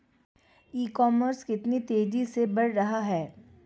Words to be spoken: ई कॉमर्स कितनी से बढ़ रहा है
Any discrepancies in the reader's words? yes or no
yes